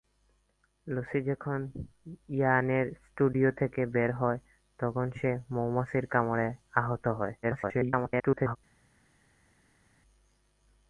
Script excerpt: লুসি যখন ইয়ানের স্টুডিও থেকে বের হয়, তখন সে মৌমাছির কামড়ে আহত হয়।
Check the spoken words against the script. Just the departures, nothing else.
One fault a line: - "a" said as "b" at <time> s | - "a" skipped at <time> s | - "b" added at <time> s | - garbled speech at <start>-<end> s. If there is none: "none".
- garbled speech at 7.4-8.6 s